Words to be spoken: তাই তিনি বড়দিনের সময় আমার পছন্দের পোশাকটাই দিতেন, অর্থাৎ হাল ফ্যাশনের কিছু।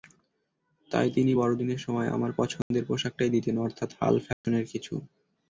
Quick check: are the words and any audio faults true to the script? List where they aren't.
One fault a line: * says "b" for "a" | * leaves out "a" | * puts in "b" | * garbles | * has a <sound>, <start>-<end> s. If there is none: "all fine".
* has a dropout, 2.6-2.7 s
* has a dropout, 4.3-4.4 s